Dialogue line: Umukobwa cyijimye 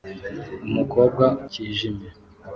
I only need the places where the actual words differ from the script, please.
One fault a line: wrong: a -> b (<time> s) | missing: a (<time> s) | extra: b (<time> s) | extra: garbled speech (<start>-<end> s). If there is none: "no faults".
no faults